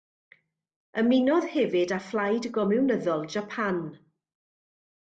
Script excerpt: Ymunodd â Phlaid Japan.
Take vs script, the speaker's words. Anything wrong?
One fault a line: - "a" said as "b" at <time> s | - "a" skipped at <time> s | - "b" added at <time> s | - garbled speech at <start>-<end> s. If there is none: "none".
- "hefyd" added at 1.6 s
- "Gomiwnyddol" added at 2.6 s